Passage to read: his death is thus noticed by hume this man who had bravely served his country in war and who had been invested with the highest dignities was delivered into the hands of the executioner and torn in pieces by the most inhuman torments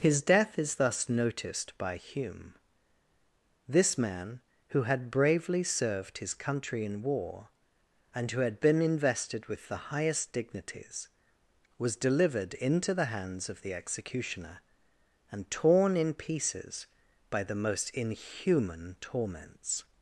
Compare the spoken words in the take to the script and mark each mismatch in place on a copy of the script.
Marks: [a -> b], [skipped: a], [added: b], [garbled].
his death is thus noticed by hume this man who had bravely served his country in war and who had been invested with the highest dignities was delivered into the hands of the executioner and torn in pieces by the most inhuman torments